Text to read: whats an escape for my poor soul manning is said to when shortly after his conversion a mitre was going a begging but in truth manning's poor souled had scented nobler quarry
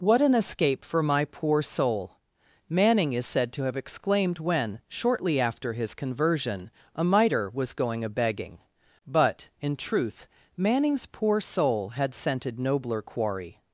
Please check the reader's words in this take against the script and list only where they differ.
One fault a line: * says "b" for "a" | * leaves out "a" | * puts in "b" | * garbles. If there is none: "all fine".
* says "what" for "whats"
* puts in "have exclaimed"
* says "soul" for "souled"